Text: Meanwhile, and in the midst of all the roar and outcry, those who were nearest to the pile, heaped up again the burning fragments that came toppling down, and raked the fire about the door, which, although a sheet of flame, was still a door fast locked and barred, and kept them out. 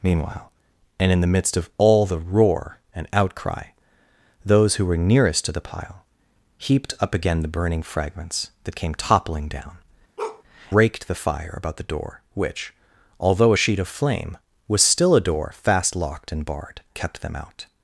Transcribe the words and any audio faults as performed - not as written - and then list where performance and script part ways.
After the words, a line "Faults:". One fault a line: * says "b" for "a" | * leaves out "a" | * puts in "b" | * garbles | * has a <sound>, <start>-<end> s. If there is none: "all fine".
Meanwhile, and in the midst of all the roar and outcry, those who were nearest to the pile, heaped up again the burning fragments that came toppling down, raked the fire about the door, which, although a sheet of flame, was still a door fast locked and barred, kept them out.
Faults:
* leaves out "and"
* has a bark, 10.2-10.4 s
* leaves out "and"